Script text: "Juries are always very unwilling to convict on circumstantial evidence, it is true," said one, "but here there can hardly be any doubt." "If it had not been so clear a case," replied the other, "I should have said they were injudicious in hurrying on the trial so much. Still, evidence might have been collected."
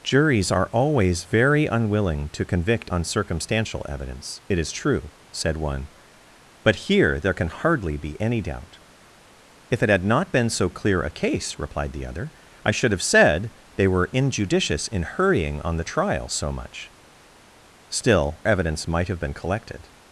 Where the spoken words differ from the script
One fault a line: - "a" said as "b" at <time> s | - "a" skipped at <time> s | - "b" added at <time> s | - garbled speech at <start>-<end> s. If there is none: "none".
none